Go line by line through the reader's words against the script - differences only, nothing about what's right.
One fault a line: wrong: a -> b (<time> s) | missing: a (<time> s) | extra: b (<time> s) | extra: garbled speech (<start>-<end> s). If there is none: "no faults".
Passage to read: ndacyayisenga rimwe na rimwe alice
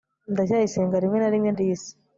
no faults